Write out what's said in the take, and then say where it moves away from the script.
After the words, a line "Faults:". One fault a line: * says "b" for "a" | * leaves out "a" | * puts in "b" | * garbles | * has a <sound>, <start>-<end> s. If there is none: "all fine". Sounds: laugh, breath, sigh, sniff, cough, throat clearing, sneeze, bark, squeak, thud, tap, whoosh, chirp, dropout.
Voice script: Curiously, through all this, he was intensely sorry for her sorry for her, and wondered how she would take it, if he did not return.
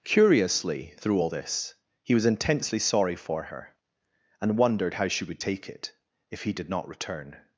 Curiously, through all this, he was intensely sorry for her, and wondered how she would take it, if he did not return.
Faults:
* leaves out "sorry for her"